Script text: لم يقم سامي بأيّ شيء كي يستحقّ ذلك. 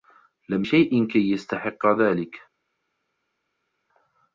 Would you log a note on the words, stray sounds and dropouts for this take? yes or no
yes